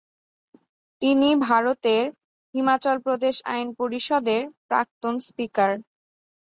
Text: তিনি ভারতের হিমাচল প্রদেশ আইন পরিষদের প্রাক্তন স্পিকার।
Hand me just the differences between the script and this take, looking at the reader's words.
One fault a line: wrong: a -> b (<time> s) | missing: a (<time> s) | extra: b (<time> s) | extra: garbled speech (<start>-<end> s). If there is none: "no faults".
no faults